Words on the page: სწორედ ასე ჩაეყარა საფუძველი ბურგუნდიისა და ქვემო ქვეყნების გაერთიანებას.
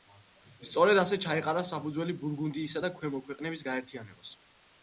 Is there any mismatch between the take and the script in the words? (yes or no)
no